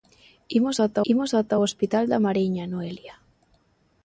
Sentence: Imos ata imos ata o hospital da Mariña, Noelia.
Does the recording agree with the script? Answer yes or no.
yes